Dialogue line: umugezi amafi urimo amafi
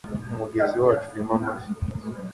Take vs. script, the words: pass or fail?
fail